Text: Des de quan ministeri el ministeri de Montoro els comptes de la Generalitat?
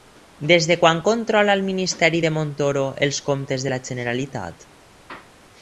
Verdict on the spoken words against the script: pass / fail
fail